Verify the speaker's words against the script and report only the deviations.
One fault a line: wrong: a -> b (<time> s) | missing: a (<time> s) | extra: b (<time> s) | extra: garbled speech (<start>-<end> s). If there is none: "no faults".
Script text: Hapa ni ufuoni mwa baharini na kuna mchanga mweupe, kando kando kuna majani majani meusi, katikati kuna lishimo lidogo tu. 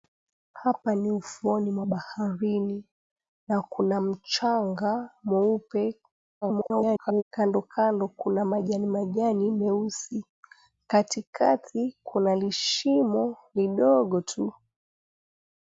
extra: garbled speech (6.4-7.2 s)